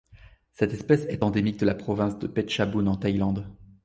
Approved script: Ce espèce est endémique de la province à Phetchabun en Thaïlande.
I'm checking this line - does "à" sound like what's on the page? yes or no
no